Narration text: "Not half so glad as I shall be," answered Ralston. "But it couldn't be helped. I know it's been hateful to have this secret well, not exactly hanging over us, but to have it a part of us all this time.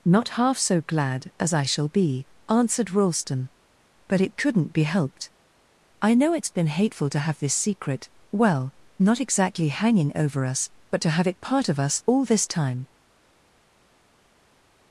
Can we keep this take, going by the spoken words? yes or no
no